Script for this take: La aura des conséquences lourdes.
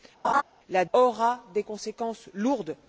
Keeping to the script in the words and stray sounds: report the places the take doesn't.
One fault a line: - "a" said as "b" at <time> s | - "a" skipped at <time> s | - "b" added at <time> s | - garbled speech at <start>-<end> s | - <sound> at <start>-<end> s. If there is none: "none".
- laugh at 0.2-0.4 s